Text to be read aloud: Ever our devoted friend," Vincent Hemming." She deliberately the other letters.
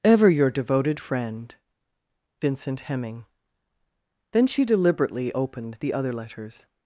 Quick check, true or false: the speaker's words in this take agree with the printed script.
false